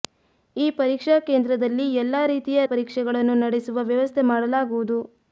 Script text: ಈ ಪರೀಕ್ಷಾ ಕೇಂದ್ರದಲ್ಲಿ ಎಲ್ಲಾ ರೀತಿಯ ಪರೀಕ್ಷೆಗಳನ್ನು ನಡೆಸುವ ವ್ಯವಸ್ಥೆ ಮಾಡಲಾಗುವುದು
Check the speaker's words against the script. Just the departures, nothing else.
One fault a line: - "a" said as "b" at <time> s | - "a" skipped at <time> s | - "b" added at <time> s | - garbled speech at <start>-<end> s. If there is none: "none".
none